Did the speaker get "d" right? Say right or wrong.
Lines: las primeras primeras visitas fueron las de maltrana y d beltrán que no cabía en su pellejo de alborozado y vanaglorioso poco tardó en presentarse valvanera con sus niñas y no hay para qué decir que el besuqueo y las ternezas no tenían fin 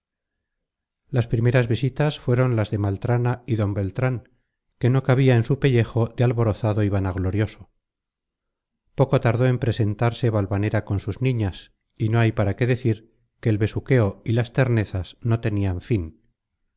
right